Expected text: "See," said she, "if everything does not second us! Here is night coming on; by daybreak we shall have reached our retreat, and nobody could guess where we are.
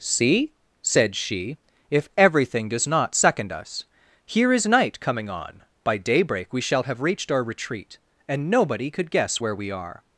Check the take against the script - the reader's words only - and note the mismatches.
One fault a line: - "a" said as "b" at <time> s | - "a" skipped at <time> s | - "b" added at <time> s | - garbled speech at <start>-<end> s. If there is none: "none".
none